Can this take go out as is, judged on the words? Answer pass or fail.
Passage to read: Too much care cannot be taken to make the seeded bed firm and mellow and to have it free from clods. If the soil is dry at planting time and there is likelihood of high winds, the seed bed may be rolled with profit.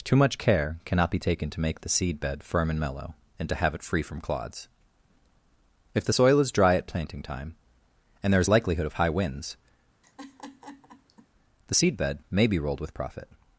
fail